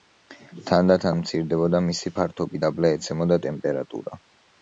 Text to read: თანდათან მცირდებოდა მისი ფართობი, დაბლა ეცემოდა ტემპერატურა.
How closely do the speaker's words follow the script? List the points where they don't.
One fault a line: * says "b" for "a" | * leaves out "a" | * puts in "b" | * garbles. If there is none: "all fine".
all fine